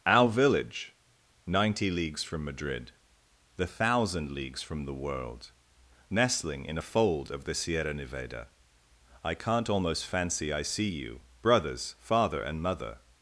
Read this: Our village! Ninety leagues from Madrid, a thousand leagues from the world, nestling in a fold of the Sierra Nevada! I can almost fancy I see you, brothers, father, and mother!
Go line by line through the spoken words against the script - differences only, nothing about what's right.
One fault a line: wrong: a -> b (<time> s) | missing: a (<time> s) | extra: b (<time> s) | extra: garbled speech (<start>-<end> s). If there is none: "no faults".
wrong: a -> the (3.6 s)
wrong: can -> can't (9.3 s)